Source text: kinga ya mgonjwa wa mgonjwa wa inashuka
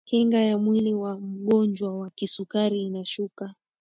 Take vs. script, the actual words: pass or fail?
fail